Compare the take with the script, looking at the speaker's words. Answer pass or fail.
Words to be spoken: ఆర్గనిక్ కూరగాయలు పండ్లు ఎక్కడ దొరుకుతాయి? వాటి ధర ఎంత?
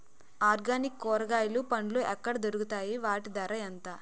pass